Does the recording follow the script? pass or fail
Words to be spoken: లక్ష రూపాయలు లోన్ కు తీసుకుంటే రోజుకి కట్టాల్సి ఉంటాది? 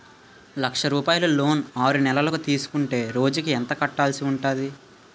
fail